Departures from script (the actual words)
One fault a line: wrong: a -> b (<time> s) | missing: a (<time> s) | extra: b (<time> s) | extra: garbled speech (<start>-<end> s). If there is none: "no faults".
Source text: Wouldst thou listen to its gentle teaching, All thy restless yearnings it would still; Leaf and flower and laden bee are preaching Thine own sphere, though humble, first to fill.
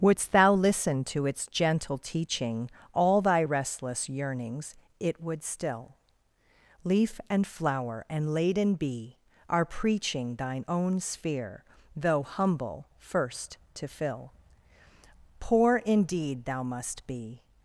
extra: Poor indeed thou must be (15.4 s)